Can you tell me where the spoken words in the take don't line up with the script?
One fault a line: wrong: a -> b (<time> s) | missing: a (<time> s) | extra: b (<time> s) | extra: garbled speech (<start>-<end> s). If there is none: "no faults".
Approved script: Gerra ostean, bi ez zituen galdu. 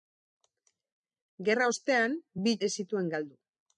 no faults